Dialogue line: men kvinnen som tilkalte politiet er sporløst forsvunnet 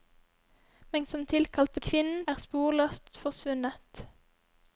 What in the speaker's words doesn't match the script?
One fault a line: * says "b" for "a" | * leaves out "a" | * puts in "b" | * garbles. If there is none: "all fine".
* leaves out "kvinnen"
* says "kvinnen" for "politiet"